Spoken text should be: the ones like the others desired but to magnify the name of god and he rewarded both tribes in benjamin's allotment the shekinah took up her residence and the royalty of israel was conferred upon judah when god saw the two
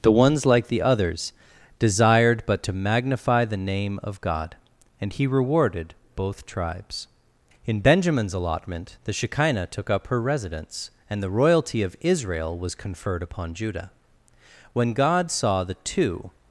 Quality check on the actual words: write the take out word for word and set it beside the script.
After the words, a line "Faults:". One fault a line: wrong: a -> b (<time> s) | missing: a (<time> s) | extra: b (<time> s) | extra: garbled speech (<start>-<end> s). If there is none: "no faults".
the ones like the others desired but to magnify the name of god and he rewarded both tribes in benjamin's allotment the shekinah took up her residence and the royalty of israel was conferred upon judah when god saw the two
Faults:
no faults